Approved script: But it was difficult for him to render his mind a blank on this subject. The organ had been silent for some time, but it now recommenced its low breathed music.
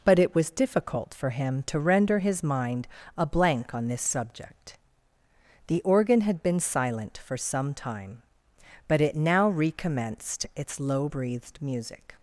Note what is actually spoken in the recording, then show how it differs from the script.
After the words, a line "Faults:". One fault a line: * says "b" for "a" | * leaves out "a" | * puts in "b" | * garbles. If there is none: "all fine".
But it was difficult for him to render his mind a blank on this subject. The organ had been silent for some time, but it now recommenced its low breathed music.
Faults:
all fine